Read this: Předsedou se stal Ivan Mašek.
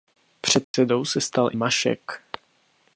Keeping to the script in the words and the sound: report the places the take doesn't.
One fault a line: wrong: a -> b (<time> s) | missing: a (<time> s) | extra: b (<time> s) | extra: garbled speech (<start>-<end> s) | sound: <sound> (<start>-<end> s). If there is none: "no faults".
sound: dropout (0.6-0.7 s)
missing: Ivan (1.5 s)